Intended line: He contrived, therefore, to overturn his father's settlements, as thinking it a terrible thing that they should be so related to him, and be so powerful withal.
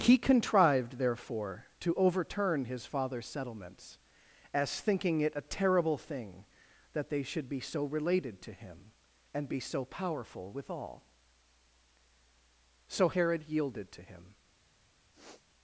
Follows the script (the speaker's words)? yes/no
no